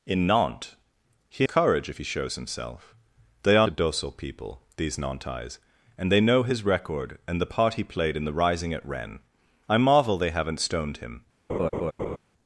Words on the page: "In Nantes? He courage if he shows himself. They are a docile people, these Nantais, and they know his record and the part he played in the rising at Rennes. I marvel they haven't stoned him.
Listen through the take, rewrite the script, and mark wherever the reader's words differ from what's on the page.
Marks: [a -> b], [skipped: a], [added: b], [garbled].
"In Nantes? He courage if he shows himself. They are a docile people, these Nantais, and they know his record and the part he played in the rising at Rennes. I marvel they haven't stoned him.